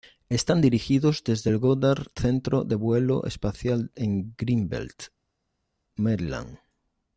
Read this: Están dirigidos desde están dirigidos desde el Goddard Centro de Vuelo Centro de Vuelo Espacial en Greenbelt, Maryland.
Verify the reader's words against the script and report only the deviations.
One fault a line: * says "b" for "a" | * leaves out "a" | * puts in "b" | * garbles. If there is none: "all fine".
* leaves out "están dirigidos desde"
* leaves out "Centro de Vuelo"